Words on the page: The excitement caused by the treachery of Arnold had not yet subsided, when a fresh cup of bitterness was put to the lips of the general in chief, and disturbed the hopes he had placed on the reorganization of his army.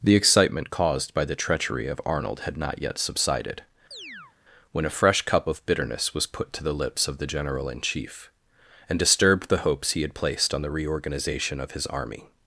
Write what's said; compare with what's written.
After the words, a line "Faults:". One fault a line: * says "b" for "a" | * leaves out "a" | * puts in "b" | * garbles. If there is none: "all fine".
The excitement caused by the treachery of Arnold had not yet subsided, when a fresh cup of bitterness was put to the lips of the general in chief, and disturbed the hopes he had placed on the reorganization of his army.
Faults:
all fine